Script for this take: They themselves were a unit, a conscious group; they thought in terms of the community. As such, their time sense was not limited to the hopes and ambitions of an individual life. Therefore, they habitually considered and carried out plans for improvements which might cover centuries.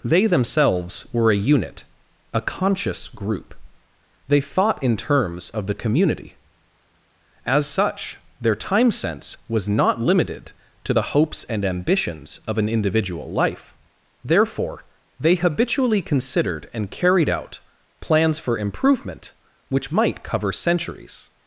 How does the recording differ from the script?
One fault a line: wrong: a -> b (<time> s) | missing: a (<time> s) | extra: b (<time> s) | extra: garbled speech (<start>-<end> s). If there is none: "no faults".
wrong: improvements -> improvement (18.6 s)